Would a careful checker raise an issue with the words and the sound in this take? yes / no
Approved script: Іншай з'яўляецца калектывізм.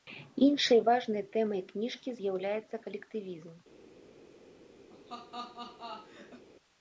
yes